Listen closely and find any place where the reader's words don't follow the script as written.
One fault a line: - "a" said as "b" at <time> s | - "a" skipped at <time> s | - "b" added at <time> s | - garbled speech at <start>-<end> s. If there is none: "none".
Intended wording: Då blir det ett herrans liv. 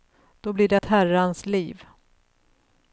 none